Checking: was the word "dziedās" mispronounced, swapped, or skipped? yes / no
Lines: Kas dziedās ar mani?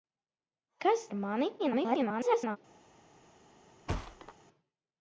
yes